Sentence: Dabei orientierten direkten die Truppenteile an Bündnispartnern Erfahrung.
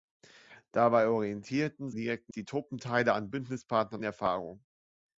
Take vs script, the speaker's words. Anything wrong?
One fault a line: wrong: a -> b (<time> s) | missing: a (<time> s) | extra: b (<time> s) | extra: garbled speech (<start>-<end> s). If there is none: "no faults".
no faults